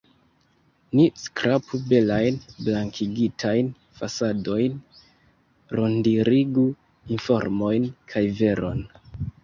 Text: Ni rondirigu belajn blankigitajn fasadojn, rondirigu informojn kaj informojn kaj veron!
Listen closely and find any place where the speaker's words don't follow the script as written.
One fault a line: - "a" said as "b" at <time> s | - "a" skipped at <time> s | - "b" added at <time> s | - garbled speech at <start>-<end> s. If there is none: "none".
- "rondirigu" said as "skrapu" at 1.2 s
- "informojn kaj" skipped at 8.3 s